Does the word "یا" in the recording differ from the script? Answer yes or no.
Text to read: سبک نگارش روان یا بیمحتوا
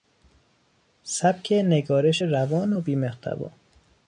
yes